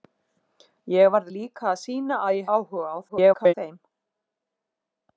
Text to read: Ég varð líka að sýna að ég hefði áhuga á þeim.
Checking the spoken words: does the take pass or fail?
fail